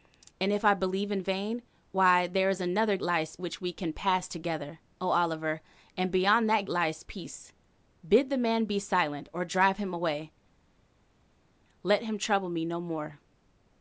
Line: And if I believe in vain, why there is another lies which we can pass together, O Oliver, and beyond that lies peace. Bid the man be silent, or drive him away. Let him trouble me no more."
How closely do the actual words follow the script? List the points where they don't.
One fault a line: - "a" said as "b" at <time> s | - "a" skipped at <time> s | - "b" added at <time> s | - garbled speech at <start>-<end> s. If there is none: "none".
none